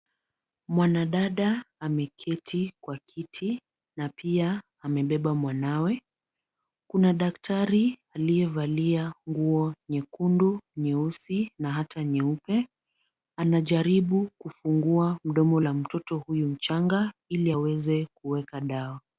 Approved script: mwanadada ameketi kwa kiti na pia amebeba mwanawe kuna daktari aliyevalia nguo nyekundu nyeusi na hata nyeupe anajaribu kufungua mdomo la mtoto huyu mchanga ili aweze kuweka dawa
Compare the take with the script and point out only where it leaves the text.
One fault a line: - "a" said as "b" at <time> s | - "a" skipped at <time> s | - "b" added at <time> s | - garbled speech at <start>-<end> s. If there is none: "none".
none